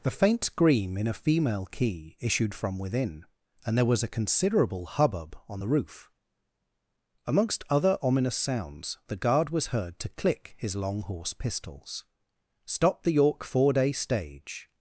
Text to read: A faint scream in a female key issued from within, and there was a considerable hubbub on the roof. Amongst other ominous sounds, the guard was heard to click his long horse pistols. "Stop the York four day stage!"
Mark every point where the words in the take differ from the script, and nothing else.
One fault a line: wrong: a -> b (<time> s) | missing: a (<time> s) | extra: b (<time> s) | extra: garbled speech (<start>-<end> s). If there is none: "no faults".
wrong: A -> The (0.0 s)